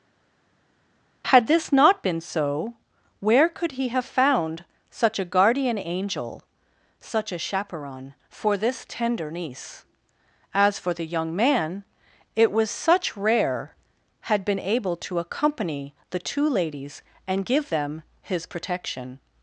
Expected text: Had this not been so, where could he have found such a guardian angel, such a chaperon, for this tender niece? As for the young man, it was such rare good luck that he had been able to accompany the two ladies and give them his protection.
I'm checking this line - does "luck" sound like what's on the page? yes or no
no